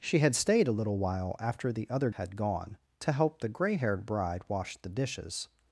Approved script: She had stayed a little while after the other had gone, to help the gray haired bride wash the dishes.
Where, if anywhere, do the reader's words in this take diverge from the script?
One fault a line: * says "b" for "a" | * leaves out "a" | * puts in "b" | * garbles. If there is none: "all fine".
all fine